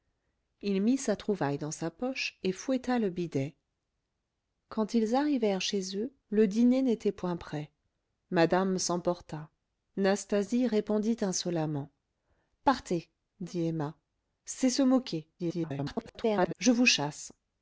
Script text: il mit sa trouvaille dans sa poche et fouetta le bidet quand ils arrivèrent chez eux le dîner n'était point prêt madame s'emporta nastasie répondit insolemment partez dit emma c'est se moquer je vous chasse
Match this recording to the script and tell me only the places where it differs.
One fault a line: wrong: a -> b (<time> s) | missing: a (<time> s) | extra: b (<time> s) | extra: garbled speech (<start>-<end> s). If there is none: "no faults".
extra: garbled speech (15.4-16.5 s)